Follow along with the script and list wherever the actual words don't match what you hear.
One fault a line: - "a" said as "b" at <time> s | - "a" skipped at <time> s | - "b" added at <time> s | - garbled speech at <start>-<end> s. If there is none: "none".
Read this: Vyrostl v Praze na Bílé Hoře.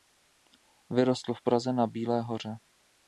none